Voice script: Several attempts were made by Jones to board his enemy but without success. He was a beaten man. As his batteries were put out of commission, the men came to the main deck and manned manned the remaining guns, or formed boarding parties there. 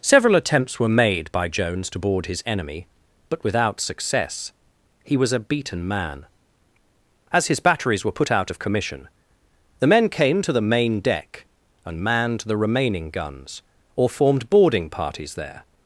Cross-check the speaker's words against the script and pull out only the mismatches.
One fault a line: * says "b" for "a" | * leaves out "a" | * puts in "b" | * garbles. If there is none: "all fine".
* leaves out "manned"